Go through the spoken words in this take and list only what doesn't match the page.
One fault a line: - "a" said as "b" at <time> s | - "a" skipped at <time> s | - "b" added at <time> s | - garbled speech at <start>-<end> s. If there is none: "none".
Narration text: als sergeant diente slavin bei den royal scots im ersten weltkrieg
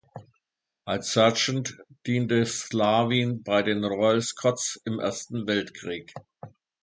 none